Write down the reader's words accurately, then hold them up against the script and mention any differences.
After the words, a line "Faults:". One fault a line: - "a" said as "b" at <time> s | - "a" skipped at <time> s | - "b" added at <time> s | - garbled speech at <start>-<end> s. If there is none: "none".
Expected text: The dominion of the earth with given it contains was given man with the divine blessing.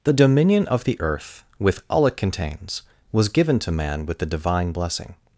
The dominion of the earth with all it contains was given to man with the divine blessing.
Faults:
- "given" said as "all" at 1.9 s
- "to" added at 3.6 s